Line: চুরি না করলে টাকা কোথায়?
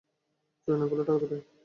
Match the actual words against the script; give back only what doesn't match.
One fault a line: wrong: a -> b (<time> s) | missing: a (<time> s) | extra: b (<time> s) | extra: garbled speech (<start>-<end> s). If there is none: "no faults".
no faults